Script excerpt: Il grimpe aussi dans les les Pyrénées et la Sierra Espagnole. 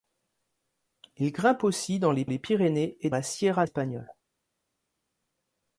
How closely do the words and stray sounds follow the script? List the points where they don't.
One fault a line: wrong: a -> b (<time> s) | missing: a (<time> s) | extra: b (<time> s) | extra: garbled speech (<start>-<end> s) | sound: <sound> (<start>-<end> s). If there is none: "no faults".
no faults